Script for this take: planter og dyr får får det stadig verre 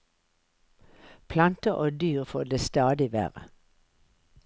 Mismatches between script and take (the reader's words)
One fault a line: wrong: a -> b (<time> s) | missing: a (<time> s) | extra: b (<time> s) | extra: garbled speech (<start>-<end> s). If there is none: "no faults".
missing: får (2.4 s)